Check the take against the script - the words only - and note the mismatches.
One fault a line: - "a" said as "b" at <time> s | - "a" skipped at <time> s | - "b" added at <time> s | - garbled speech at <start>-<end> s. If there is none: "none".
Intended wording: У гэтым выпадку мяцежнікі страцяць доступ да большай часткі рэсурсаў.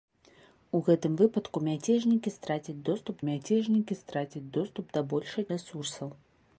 - "мяцежнікі страцяць доступ" added at 3.3 s
- "часткі" skipped at 5.4 s